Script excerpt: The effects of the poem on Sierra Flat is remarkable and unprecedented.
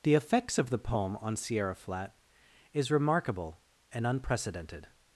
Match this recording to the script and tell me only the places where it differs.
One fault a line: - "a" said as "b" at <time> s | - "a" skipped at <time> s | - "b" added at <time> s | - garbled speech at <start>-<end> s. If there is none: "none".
none